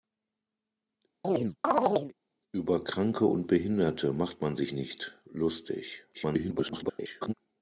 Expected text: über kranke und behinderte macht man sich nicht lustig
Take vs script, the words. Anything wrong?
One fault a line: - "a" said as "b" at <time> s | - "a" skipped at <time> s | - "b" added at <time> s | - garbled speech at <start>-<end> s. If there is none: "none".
- garbled speech at 6.1-7.3 s